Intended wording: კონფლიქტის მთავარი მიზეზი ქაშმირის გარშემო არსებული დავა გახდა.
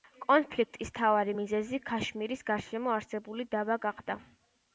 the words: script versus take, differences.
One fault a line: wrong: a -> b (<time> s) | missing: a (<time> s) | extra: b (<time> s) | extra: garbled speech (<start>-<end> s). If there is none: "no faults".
no faults